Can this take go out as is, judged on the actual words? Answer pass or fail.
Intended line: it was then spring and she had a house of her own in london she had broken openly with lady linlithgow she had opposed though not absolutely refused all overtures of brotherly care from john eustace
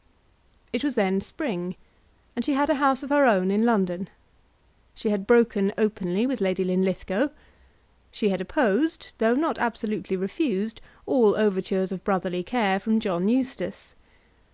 pass